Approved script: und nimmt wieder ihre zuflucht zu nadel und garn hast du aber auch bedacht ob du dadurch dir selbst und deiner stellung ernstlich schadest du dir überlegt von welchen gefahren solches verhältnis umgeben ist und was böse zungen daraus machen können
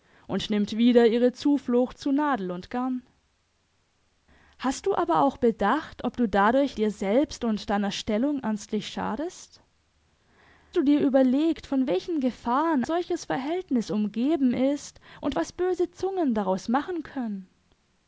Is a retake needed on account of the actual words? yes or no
no